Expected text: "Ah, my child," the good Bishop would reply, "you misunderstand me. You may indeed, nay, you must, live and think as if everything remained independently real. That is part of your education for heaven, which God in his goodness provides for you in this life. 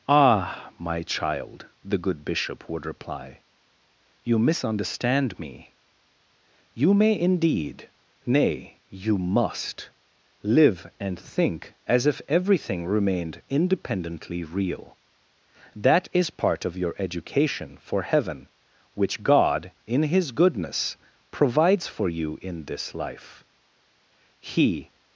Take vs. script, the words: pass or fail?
fail